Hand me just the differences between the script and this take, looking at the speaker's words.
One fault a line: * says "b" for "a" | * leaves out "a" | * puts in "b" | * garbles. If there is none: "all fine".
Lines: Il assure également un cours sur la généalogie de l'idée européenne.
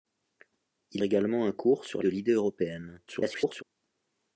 * leaves out "assure"
* leaves out "la généalogie"
* garbles